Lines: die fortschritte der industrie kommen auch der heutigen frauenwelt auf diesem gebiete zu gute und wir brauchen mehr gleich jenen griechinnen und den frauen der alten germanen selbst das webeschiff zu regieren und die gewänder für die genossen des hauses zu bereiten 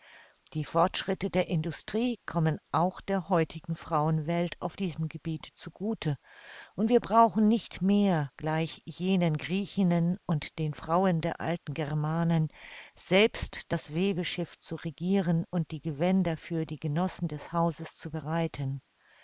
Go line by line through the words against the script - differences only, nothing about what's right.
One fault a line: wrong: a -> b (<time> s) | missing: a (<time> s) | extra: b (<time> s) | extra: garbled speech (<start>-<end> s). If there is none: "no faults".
extra: nicht (7.5 s)